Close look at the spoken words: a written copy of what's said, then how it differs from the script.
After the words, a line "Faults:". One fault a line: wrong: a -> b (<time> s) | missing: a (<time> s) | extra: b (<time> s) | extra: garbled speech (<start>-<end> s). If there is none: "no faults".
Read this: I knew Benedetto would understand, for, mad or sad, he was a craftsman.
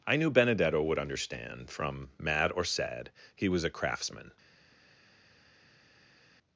I knew Benedetto would understand, from, mad or sad, he was a craftsman.
Faults:
wrong: for -> from (1.7 s)